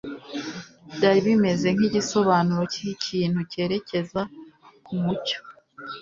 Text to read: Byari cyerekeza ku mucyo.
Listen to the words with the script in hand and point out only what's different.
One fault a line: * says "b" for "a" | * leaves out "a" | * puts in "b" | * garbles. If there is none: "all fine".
* puts in "bimeze nkigisobanuro cy'ikintu"